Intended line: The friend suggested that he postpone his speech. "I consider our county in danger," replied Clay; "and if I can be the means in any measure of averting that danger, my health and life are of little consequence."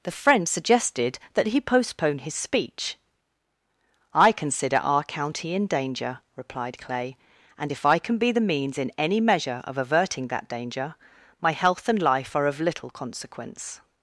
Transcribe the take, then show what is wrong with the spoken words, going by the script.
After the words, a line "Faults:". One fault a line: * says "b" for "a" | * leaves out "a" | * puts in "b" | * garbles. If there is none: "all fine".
The friend suggested that he postpone his speech. "I consider our county in danger," replied Clay; "and if I can be the means in any measure of averting that danger, my health and life are of little consequence."
Faults:
all fine